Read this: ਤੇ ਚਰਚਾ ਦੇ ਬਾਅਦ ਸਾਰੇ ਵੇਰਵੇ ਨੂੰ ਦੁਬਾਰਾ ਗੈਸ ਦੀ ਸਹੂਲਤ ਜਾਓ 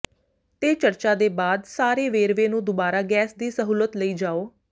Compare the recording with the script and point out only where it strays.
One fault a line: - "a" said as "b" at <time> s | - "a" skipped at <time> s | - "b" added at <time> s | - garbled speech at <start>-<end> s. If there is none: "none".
- "ਲਈ" added at 4.0 s